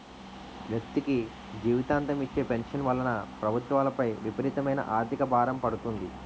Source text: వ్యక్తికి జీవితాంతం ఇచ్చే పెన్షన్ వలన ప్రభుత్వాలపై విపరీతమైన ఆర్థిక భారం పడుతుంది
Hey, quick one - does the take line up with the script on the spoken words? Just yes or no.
yes